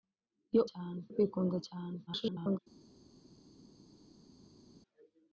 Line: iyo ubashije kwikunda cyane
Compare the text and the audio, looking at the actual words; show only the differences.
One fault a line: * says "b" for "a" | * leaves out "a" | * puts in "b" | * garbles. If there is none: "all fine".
* says "cyane" for "ubashije"
* garbles